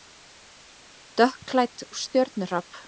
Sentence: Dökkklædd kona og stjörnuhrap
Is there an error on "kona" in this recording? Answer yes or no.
yes